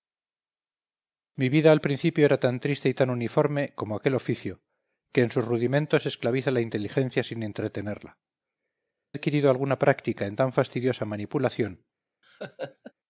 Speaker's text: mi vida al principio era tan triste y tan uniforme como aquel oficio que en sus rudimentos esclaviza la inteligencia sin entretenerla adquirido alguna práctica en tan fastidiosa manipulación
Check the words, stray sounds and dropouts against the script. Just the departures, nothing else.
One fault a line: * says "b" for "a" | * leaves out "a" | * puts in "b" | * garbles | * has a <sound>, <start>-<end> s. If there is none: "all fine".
* has a laugh, 12.2-12.9 s